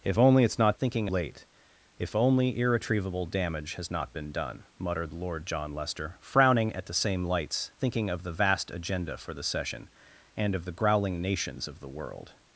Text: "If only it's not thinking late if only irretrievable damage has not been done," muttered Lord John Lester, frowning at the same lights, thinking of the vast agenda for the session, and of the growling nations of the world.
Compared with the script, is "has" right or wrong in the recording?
right